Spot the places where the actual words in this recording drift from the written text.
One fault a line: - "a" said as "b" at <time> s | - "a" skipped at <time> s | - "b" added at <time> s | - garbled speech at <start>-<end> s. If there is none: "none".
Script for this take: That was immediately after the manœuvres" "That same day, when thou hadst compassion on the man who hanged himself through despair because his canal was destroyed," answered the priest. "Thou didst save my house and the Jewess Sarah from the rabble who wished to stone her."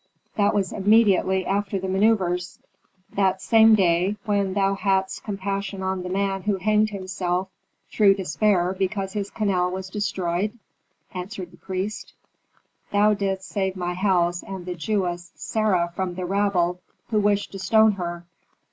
none